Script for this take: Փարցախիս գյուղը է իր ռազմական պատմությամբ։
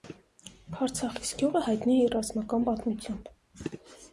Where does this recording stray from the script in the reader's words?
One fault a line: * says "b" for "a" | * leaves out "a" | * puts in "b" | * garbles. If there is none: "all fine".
* puts in "հայտնի"